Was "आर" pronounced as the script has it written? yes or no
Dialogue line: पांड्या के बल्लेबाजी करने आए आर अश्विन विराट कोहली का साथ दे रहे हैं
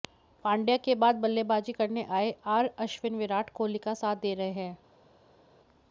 yes